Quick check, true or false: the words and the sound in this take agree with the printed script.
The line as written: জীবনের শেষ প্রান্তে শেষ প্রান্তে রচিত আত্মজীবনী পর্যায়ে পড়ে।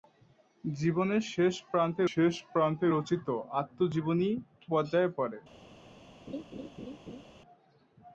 false